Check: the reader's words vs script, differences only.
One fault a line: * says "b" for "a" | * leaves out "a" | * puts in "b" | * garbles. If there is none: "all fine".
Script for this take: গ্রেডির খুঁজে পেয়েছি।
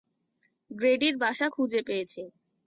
* puts in "বাসা"